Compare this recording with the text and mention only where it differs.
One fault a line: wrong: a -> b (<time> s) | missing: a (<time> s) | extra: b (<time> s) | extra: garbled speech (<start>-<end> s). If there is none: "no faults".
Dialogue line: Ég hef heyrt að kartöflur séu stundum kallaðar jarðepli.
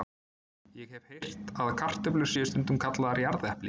no faults